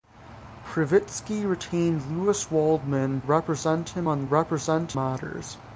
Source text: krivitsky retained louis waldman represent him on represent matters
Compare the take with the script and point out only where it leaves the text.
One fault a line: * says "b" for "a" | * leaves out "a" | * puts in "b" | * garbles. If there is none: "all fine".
all fine